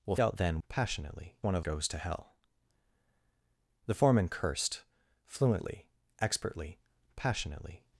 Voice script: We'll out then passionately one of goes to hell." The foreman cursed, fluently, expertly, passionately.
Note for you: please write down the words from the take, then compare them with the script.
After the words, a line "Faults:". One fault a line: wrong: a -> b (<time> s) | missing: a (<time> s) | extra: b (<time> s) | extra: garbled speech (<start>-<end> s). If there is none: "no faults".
We'll out then passionately one of goes to hell." The foreman cursed, fluently, expertly, passionately.
Faults:
no faults